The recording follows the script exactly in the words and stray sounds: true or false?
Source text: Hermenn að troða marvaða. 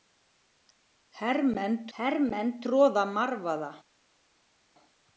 false